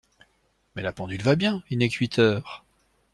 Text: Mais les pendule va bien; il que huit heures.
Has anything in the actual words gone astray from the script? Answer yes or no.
yes